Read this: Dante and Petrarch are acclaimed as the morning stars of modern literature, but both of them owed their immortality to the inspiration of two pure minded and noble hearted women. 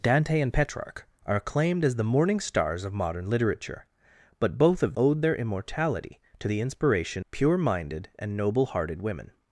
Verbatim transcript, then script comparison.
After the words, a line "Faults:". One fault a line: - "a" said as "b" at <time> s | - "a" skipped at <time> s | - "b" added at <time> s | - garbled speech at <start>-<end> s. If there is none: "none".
Dante and Petrarch are acclaimed as the morning stars of modern literature, but both of owed their immortality to the inspiration pure minded and noble hearted women.
Faults:
- "them" skipped at 5.0 s
- "of two" skipped at 7.2 s